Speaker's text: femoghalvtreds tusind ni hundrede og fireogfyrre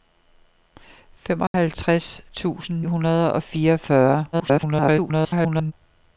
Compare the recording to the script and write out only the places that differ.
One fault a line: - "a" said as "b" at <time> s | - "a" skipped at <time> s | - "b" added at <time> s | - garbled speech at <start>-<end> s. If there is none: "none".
- "ni" skipped at 2.8 s
- garbled speech at 4.3-5.7 s